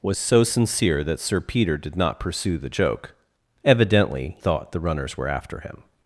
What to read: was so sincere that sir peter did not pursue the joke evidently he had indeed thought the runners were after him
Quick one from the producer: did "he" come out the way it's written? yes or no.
no